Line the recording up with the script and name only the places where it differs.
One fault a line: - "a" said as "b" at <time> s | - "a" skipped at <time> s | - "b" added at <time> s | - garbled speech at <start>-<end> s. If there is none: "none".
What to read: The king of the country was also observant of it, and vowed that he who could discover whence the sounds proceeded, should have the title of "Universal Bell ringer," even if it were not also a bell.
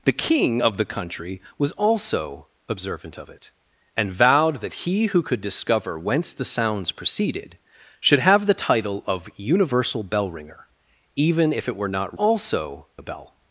none